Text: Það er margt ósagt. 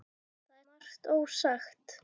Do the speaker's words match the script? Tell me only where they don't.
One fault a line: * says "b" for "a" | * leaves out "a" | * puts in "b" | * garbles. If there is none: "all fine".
all fine